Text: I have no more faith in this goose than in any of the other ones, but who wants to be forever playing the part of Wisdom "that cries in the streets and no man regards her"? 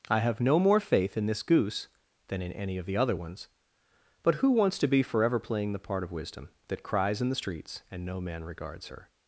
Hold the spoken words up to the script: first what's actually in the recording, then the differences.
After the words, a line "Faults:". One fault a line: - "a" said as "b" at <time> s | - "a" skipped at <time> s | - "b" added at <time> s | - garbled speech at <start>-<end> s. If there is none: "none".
I have no more faith in this goose than in any of the other ones, but who wants to be forever playing the part of Wisdom "that cries in the streets and no man regards her"?
Faults:
none